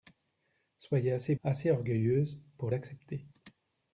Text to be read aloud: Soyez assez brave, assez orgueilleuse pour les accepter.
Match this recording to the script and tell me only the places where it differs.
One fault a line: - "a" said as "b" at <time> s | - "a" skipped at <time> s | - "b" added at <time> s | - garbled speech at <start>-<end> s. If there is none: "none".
- "brave" skipped at 1.4 s
- "les" skipped at 2.7 s